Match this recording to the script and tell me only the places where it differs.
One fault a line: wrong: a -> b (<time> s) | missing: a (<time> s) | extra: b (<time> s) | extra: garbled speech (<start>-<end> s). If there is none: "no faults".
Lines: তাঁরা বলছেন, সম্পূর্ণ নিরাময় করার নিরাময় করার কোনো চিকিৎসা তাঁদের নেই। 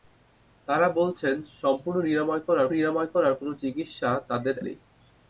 no faults